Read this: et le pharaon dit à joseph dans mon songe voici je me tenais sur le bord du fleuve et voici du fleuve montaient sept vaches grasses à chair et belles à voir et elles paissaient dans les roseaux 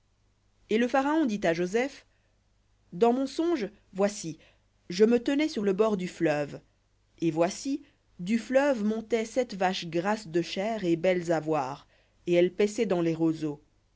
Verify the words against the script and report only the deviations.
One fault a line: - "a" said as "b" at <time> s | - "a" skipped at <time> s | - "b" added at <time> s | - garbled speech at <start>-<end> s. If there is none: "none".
- "à" said as "de" at 10.3 s